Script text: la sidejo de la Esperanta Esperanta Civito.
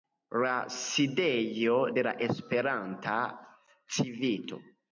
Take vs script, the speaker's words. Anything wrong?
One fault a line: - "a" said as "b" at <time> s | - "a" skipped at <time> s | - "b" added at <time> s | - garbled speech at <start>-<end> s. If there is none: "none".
- "Esperanta" skipped at 3.2 s